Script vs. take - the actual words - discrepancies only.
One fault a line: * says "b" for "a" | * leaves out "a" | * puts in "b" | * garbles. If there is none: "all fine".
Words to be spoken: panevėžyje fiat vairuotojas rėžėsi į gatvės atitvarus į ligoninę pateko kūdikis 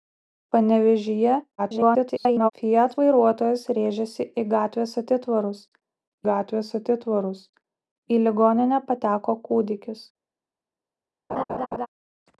* garbles
* puts in "gatvės atitvarus"